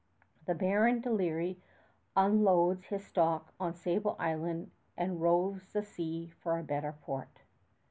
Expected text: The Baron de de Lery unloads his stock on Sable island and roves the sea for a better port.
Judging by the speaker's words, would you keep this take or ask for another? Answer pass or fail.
fail